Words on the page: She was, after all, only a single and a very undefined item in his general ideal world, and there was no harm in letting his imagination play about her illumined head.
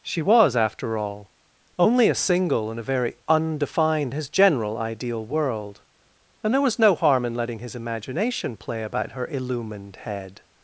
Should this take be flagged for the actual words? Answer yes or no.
yes